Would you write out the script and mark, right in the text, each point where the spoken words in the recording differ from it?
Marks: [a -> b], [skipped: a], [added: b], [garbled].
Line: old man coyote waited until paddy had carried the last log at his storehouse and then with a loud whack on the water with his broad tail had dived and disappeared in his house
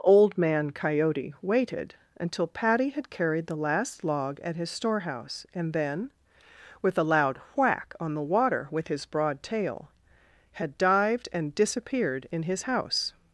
old man coyote waited until paddy had carried the last log at his storehouse and then with a loud whack on the water with his broad tail had dived and disappeared in his house